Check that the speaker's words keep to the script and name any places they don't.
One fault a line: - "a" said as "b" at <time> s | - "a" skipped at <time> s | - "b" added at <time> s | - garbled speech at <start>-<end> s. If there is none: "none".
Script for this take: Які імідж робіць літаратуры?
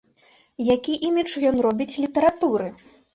- "ён" added at 1.5 s